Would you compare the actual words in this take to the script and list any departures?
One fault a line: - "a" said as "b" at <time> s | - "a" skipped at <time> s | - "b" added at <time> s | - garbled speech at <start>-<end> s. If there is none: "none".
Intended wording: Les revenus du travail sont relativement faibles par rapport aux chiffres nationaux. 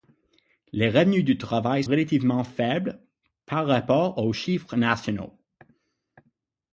- "sont" skipped at 1.8 s